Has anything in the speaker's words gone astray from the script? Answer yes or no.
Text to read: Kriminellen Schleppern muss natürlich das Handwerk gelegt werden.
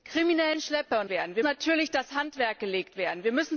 yes